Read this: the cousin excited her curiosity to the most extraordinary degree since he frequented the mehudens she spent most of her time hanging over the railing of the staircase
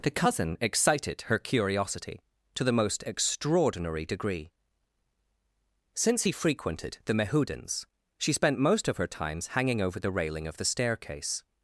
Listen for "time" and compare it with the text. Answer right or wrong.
wrong